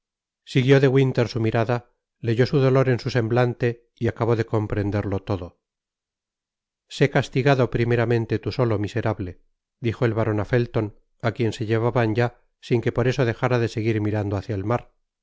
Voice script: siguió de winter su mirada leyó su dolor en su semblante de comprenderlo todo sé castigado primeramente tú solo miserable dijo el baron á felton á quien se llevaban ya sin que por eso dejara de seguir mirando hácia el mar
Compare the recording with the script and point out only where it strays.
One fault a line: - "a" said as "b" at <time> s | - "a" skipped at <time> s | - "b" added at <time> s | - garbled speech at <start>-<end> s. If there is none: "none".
- "y acabó" added at 4.0 s